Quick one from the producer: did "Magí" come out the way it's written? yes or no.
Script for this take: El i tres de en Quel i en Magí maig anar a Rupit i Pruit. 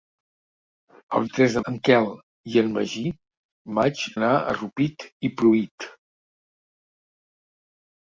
yes